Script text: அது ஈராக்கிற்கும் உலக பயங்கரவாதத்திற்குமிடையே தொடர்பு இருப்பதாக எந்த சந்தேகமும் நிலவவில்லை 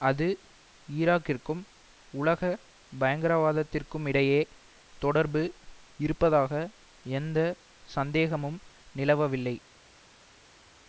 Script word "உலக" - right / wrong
right